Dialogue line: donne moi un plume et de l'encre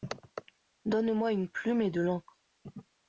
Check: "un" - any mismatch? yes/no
yes